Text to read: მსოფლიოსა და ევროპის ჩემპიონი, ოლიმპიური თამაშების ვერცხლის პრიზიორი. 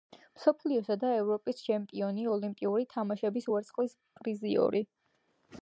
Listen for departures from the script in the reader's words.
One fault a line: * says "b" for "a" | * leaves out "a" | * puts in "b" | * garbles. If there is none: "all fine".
all fine